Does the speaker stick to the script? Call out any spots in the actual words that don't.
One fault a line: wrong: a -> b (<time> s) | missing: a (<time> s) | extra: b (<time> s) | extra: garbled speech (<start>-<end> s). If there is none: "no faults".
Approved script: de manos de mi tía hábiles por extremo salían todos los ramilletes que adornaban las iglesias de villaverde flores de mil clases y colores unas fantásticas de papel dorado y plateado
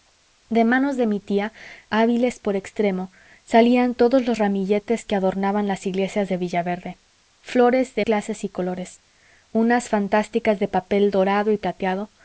missing: mil (8.1 s)